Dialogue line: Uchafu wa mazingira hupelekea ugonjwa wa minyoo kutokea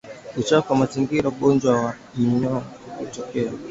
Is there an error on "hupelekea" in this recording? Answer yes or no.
yes